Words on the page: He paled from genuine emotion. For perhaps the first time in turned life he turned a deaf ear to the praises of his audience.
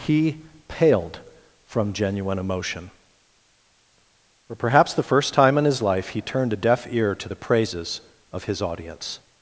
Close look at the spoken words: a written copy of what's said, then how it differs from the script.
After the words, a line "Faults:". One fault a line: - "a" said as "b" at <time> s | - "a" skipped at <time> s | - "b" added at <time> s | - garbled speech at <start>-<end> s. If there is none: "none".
He paled from genuine emotion. For perhaps the first time in his life he turned a deaf ear to the praises of his audience.
Faults:
- "turned" said as "his" at 5.7 s